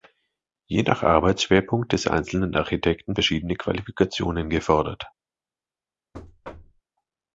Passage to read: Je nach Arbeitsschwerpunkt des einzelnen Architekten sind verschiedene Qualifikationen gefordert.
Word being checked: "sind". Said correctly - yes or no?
no